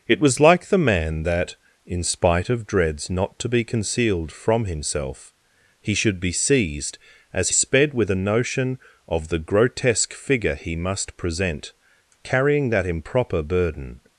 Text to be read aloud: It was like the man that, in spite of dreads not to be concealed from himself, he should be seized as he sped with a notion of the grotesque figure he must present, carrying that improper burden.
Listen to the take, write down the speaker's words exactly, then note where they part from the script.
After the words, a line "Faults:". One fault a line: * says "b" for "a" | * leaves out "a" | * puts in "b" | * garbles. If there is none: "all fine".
It was like the man that, in spite of dreads not to be concealed from himself, he should be seized as sped with a notion of the grotesque figure he must present, carrying that improper burden.
Faults:
* leaves out "he"